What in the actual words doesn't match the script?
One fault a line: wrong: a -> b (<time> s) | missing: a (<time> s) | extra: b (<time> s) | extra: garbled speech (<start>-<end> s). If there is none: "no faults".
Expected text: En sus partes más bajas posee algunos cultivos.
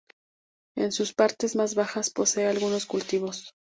no faults